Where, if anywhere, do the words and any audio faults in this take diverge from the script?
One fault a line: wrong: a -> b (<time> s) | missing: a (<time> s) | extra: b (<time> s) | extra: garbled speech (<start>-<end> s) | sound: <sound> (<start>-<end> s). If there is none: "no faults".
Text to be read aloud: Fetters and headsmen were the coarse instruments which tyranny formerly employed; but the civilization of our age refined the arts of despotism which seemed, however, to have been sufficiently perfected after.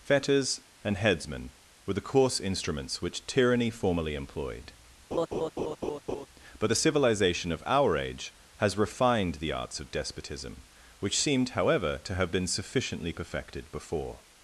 sound: laugh (5.1-6.3 s)
extra: has (8.6 s)
wrong: after -> before (13.7 s)